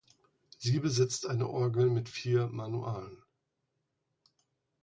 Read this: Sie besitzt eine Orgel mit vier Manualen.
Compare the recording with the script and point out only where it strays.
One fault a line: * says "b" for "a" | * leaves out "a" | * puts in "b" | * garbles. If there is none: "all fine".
all fine